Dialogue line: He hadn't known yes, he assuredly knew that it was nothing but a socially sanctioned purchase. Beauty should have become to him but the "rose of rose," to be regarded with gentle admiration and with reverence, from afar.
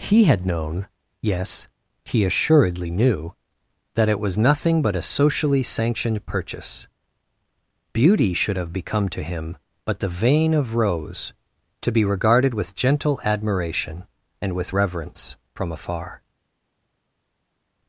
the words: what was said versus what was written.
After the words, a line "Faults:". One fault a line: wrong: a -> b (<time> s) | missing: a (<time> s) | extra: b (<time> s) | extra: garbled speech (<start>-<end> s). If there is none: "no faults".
He had known yes, he assuredly knew that it was nothing but a socially sanctioned purchase. Beauty should have become to him but the "vein of rose," to be regarded with gentle admiration and with reverence, from afar.
Faults:
wrong: hadn't -> had (0.2 s)
wrong: rose -> vein (10.1 s)